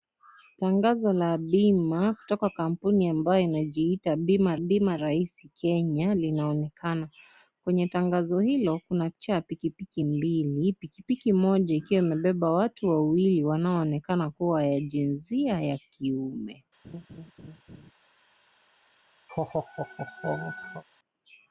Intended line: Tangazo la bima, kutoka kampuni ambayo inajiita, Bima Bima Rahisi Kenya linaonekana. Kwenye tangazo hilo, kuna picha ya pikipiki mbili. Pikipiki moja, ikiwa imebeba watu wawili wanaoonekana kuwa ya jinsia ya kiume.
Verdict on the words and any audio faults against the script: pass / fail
fail